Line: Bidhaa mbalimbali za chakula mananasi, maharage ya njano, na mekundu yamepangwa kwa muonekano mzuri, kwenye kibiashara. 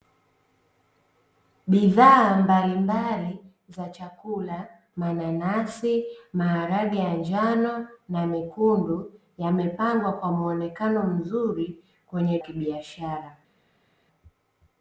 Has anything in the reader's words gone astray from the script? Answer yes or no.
no